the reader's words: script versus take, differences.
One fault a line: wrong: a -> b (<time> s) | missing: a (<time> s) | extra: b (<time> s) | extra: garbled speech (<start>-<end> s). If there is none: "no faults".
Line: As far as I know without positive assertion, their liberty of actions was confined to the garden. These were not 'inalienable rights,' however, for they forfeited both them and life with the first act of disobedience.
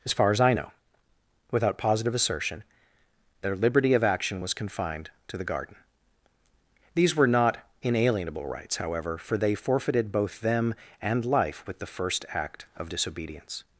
wrong: actions -> action (4.0 s)